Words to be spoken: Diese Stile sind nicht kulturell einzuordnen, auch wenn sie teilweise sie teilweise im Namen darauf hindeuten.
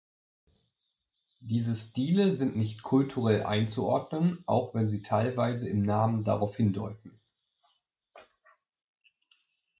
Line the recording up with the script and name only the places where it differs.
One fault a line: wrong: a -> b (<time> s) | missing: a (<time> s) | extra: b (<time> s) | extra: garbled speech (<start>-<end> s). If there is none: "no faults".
missing: sie teilweise (5.7 s)